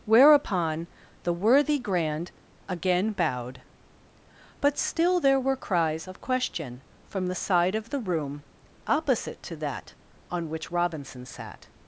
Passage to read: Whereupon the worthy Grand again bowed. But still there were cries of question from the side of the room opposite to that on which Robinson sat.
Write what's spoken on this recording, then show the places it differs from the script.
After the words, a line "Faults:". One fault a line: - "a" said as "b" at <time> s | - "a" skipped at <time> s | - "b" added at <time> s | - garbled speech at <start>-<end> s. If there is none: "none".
Whereupon the worthy Grand again bowed. But still there were cries of question from the side of the room opposite to that on which Robinson sat.
Faults:
none